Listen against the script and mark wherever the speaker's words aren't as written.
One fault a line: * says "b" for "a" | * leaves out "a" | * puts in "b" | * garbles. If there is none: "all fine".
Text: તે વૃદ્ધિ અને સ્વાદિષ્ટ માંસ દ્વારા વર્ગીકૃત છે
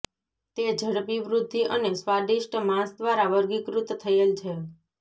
* puts in "ઝડપી"
* puts in "થયેલ"